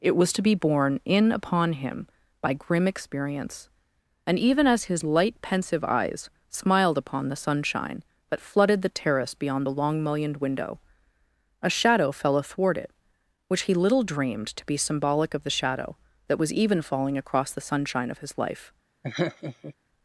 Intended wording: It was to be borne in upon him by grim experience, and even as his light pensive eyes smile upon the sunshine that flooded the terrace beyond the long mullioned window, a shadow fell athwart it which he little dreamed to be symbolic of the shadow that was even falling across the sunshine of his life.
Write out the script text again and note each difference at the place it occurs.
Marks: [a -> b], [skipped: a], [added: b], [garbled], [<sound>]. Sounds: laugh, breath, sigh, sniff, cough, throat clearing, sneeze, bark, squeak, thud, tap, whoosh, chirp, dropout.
It was to be borne in upon him by grim experience, and even as his light pensive eyes [smile -> smiled] upon the sunshine that flooded the terrace beyond the long mullioned window, a shadow fell athwart it which he little dreamed to be symbolic of the shadow that was even falling across the sunshine of his life. [laugh]